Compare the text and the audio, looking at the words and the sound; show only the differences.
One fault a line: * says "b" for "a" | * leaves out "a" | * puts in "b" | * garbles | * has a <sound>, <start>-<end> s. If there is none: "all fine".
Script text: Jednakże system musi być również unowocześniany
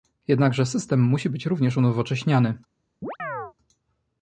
* has a chirp, 3.0-3.5 s